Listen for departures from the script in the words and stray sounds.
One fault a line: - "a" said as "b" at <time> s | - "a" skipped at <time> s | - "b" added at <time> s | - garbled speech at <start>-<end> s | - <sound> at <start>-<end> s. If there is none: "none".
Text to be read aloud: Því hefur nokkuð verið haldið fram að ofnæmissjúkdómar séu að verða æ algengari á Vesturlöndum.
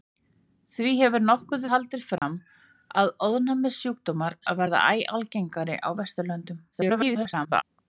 - "verið" skipped at 1.7 s
- dropout at 2.2-2.2 s
- "séu" skipped at 4.4 s
- garbled speech at 6.7-7.6 s